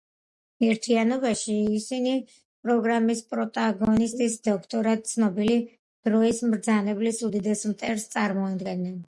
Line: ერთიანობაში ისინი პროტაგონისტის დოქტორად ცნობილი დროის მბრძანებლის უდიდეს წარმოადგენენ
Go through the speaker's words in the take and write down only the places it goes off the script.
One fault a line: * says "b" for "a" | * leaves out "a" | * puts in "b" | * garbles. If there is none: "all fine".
* puts in "პროგრამის"
* puts in "მტერს"